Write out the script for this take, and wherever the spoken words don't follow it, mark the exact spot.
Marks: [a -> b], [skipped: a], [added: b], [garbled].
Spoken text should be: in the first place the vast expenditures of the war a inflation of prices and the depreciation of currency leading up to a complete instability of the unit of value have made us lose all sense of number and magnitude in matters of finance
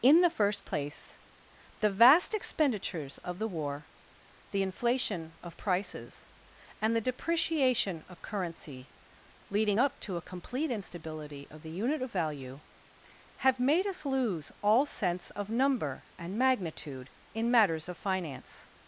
in the first place the vast expenditures of the war [a -> the] inflation of prices and the depreciation of currency leading up to a complete instability of the unit of value have made us lose all sense of number and magnitude in matters of finance